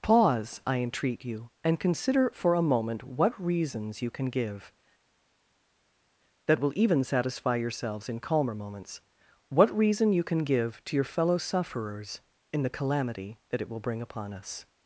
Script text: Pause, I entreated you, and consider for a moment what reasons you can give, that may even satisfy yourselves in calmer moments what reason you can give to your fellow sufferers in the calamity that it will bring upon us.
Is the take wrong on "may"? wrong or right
wrong